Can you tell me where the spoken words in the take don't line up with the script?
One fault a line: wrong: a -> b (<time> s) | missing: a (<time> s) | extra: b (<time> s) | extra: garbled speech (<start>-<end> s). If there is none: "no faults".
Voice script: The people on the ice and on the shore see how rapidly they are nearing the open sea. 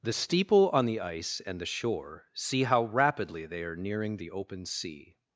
wrong: people -> steeple (0.1 s)
missing: on (1.6 s)